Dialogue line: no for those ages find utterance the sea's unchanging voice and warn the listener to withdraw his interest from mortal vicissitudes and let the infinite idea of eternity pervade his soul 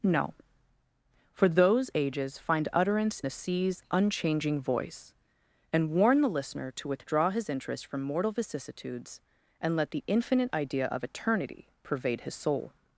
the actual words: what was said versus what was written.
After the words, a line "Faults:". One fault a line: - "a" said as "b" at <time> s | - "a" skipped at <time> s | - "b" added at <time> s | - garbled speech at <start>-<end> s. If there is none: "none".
no for those ages find utterance the sea's unchanging voice and warn the listener to withdraw his interest from mortal vicissitudes and let the infinite idea of eternity pervade his soul
Faults:
none